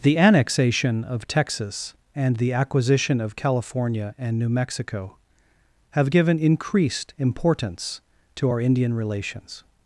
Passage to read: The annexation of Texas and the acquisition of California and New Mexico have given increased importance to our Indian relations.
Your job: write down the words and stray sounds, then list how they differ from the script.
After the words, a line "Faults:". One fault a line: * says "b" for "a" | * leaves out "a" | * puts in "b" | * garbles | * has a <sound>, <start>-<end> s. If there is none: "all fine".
The annexation of Texas and the acquisition of California and New Mexico have given increased importance to our Indian relations.
Faults:
all fine